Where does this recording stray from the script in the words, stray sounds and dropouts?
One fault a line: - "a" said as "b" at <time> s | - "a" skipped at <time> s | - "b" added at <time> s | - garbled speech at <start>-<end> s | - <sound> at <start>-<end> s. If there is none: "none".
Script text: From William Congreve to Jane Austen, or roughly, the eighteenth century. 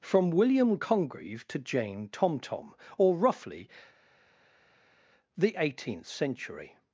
- "Austen" said as "Tomtom" at 2.1 s